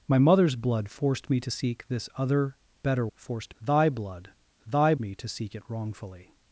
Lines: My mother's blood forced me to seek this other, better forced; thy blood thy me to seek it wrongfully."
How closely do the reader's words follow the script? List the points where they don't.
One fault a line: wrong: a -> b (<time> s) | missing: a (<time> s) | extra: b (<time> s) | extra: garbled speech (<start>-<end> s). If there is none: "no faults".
no faults